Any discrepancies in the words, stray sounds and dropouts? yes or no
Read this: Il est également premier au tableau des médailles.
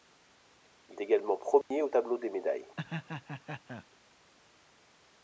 yes